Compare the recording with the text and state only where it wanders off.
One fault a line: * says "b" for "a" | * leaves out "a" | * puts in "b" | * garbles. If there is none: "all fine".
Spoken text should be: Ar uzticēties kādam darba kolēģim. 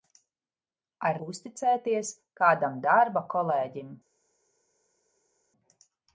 all fine